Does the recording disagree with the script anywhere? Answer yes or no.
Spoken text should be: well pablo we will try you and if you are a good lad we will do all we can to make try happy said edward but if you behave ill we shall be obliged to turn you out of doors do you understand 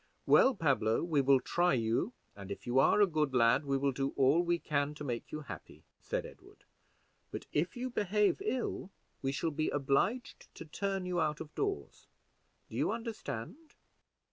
yes